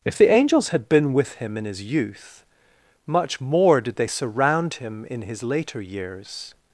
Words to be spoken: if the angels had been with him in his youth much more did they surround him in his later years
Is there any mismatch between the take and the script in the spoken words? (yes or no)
no